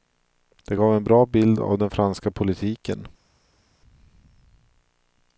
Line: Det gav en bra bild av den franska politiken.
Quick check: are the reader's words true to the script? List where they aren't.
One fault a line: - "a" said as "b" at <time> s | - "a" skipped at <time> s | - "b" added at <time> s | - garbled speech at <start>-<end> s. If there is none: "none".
none